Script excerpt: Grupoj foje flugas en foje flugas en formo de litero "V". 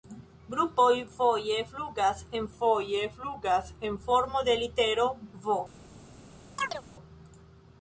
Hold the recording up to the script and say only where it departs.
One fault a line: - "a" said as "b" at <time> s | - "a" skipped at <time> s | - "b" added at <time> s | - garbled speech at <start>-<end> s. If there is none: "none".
none